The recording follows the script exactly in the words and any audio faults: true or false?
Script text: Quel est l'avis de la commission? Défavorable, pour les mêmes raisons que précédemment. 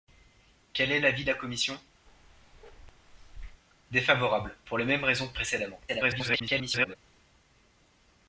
false